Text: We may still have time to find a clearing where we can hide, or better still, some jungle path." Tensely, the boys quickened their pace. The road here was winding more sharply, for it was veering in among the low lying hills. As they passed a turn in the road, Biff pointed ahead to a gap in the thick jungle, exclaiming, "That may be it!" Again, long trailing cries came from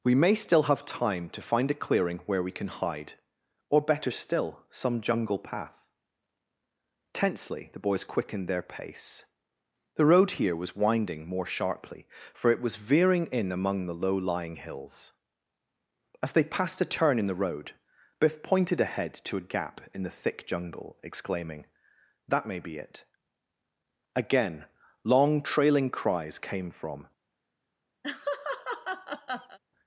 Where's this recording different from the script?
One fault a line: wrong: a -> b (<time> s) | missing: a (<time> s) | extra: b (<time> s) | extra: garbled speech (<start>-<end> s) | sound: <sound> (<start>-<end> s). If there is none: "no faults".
sound: laugh (28.0-29.6 s)